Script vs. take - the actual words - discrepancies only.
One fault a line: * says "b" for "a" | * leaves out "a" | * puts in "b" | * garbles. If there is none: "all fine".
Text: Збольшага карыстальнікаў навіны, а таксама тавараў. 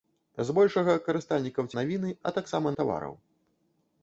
all fine